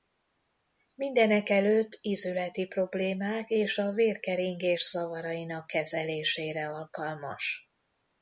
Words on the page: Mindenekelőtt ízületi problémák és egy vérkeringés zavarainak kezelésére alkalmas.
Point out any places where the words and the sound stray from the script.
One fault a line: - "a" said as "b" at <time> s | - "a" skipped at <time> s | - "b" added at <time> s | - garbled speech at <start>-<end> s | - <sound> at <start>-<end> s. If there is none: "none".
- "egy" said as "a" at 3.8 s